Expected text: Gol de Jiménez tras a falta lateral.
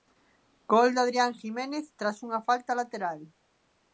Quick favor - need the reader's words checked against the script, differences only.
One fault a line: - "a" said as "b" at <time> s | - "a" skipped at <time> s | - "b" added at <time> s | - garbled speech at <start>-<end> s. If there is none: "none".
- "Adrián" added at 1.1 s
- "a" said as "unha" at 2.3 s